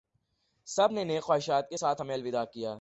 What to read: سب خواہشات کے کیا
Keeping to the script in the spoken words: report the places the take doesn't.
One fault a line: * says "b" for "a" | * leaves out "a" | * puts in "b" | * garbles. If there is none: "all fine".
* puts in "نے نیک"
* puts in "ساتھ ہمیں الوداع"